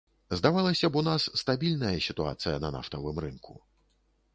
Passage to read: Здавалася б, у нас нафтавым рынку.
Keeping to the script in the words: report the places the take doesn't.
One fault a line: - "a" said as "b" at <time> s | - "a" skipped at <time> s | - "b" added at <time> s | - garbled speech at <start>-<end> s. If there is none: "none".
- "стабільная сітуацыя на" added at 1.4 s